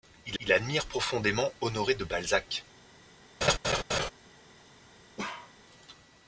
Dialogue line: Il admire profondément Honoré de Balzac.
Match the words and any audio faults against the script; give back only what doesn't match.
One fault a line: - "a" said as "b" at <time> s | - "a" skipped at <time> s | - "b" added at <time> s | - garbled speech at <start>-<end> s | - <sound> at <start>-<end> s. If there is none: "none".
- "il" added at 0.4 s
- laugh at 3.4-4.1 s
- bark at 5.2-5.5 s